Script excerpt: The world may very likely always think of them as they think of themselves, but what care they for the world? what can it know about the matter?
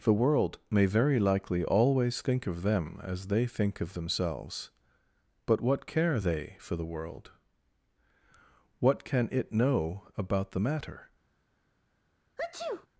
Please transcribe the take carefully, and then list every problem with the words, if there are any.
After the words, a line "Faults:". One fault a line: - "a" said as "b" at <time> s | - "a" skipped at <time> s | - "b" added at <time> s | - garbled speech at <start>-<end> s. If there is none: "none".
The world may very likely always think of them as they think of themselves, but what care they for the world? what can it know about the matter?
Faults:
none